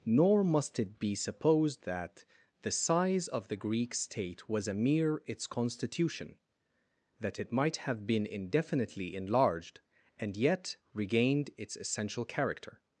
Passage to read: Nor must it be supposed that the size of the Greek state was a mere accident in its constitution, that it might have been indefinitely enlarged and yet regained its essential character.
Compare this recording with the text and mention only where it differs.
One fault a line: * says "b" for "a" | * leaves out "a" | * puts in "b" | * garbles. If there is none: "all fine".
* leaves out "accident in"